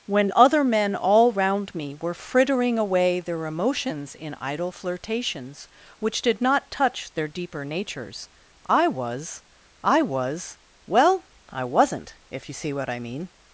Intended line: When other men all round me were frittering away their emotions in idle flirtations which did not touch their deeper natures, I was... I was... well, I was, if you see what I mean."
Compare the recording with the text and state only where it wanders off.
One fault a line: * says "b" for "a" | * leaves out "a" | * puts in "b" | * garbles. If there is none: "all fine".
* says "wasn't" for "was"